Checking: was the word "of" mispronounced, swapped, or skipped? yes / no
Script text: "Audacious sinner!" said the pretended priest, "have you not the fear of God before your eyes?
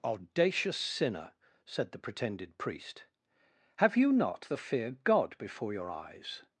yes